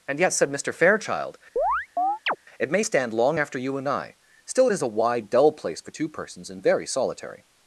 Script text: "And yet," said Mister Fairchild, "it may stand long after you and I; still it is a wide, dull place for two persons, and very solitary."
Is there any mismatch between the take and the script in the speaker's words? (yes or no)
no